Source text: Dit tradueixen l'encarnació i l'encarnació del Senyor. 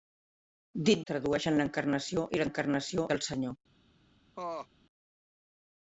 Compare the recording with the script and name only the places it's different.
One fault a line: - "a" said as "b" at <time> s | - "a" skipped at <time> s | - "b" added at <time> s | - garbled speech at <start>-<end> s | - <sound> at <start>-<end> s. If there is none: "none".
- laugh at 4.4-4.7 s